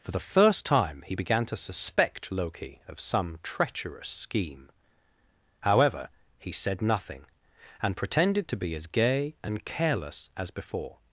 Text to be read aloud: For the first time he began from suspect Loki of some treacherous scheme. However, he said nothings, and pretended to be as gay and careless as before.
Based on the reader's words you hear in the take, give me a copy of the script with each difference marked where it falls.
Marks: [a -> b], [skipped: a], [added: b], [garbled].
For the first time he began [from -> to] suspect Loki of some treacherous scheme. However, he said [nothings, -> nothing] and pretended to be as gay and careless as before.